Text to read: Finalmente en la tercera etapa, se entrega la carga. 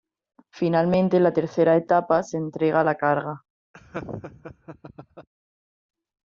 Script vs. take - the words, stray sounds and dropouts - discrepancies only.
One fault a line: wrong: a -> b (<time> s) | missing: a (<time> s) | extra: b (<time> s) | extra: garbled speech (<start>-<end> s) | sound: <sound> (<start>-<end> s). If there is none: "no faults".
sound: laugh (3.7-5.3 s)